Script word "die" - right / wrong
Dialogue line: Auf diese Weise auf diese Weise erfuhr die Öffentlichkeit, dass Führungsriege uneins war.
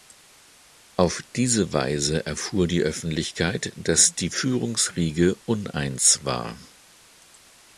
right